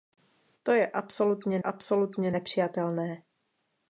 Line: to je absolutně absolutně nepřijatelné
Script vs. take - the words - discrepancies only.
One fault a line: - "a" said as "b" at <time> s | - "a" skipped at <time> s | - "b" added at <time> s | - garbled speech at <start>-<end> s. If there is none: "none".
none